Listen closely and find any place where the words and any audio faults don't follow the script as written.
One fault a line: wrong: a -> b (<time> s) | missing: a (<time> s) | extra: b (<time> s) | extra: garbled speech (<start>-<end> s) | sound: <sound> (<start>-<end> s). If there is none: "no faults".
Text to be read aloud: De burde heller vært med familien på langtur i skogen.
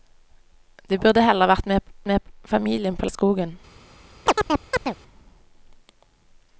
extra: med (2.1 s)
missing: langtur (3.1 s)
sound: chirp (4.3-5.0 s)